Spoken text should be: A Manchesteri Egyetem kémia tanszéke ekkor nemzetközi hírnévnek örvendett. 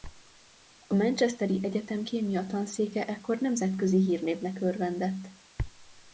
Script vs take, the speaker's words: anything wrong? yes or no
no